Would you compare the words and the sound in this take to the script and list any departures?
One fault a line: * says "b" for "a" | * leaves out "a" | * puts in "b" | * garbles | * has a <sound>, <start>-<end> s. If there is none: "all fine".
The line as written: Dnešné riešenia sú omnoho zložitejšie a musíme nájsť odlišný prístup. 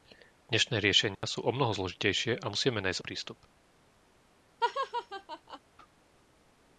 * has a dropout, 1.2-1.2 s
* leaves out "odlišný"
* has a laugh, 4.6-5.6 s